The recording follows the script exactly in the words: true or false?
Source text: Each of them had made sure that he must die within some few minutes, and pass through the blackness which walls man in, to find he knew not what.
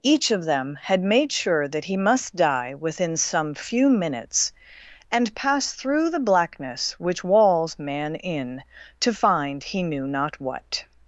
true